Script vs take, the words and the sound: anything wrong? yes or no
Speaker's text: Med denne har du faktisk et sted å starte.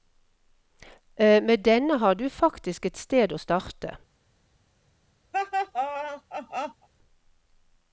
yes